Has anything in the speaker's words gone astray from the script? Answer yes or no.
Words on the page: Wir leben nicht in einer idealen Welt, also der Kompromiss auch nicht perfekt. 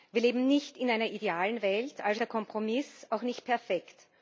no